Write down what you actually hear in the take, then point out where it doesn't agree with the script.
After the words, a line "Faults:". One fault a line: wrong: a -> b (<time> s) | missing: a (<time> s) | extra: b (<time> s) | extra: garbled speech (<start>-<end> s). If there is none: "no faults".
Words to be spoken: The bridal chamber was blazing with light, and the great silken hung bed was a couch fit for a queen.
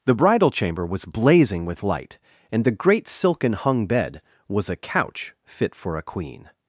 The bridal chamber was blazing with light, and the great silken hung bed was a couch fit for a queen.
Faults:
no faults